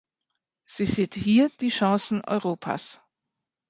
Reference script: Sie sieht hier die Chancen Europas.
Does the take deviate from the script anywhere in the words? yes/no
no